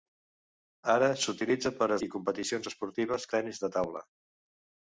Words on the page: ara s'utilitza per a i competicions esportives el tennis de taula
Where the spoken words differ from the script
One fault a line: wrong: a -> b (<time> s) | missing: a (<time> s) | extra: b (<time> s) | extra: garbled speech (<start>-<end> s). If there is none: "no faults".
no faults